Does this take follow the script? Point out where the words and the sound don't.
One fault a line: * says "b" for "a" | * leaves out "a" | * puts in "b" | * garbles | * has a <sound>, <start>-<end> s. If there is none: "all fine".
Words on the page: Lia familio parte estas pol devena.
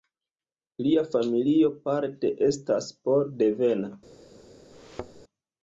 * has a thud, 4.7-5.2 s